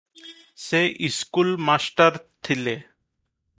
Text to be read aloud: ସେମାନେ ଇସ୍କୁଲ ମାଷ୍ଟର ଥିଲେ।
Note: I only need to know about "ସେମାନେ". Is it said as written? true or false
false